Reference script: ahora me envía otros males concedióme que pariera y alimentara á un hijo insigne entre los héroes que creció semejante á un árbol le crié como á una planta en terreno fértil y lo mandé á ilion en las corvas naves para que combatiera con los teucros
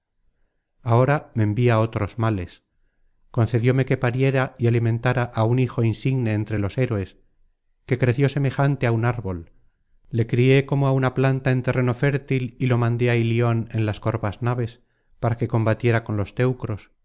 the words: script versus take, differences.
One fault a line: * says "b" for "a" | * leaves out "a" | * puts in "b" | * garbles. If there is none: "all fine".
all fine